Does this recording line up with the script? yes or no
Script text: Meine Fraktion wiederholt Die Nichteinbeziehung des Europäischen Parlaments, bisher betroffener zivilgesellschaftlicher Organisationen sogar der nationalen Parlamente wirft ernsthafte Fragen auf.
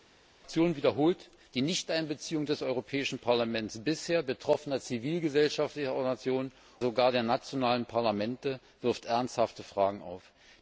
yes